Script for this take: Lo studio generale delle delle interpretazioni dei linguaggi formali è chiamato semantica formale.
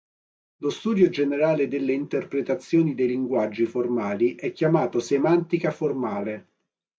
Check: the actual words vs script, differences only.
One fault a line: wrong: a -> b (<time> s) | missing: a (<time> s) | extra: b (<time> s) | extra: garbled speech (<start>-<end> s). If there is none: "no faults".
missing: delle (1.9 s)